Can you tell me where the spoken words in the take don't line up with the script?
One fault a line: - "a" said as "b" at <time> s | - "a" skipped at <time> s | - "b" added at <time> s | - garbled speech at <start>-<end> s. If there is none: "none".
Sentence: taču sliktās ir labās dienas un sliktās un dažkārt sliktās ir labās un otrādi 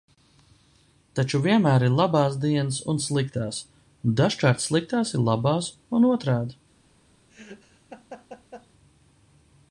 - "sliktās" said as "vienmēr" at 1.4 s